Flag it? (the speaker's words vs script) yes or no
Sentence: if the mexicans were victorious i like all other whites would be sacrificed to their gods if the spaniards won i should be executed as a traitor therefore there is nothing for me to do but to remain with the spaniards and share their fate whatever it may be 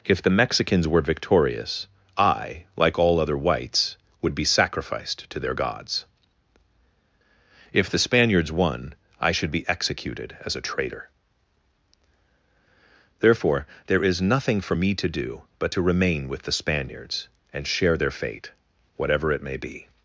no